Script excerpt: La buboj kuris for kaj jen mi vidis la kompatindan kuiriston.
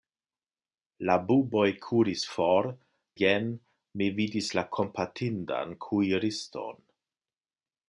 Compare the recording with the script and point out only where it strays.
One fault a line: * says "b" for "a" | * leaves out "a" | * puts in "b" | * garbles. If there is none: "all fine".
* leaves out "kaj"